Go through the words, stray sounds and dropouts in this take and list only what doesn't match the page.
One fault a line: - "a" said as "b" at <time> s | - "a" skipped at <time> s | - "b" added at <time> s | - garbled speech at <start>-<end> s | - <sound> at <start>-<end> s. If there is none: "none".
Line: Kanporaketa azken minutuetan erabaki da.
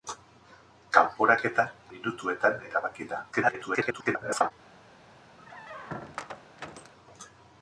- "azken" skipped at 1.7 s
- garbled speech at 3.3-4.5 s
- squeak at 5.4-6.9 s